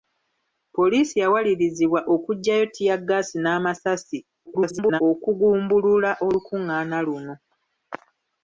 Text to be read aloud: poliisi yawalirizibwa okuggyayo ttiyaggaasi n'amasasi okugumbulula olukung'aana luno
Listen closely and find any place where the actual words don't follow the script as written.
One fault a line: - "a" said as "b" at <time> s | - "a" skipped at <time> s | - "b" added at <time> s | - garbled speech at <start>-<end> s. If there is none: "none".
- garbled speech at 4.5-5.0 s